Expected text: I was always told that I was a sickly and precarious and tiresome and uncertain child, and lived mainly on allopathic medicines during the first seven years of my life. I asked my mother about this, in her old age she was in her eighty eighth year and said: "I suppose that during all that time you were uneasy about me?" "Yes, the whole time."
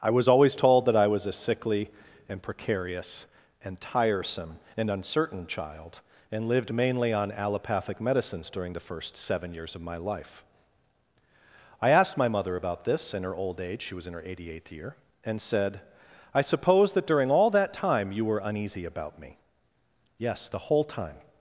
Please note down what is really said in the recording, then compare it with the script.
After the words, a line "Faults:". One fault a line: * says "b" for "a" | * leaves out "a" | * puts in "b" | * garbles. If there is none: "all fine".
I was always told that I was a sickly and precarious and tiresome and uncertain child, and lived mainly on allopathic medicines during the first seven years of my life. I asked my mother about this, in her old age she was in her eighty eighth year and said: "I suppose that during all that time you were uneasy about me?" "Yes, the whole time."
Faults:
all fine